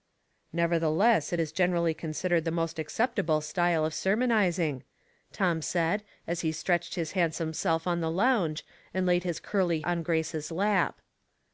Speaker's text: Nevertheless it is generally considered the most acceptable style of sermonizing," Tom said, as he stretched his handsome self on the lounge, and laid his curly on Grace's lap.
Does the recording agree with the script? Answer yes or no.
yes